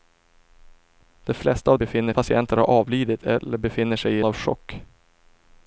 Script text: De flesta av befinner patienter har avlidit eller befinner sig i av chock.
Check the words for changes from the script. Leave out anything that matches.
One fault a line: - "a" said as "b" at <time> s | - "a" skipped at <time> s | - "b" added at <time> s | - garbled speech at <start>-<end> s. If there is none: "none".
none